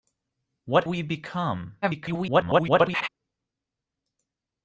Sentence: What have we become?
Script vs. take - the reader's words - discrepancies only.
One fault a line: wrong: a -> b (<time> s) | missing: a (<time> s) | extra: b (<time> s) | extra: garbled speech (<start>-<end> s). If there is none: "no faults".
missing: have (0.8 s)
extra: garbled speech (1.8-3.1 s)